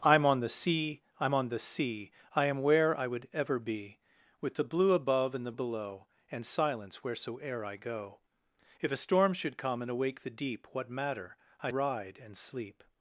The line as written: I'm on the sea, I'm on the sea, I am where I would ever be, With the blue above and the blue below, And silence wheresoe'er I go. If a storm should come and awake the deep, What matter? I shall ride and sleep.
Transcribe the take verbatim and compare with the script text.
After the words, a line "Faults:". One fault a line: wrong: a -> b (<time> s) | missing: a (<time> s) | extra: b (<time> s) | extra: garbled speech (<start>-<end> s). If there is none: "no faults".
I'm on the sea, I'm on the sea, I am where I would ever be, With the blue above and the below, And silence wheresoe'er I go. If a storm should come and awake the deep, What matter? I ride and sleep.
Faults:
missing: blue (5.5 s)
missing: shall (11.7 s)